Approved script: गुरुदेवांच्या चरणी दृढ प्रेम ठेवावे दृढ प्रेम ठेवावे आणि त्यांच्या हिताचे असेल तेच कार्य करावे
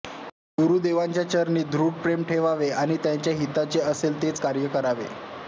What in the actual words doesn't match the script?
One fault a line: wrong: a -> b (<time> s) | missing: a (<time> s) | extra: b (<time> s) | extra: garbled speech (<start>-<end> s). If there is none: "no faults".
missing: दृढ प्रेम ठेवावे (2.7 s)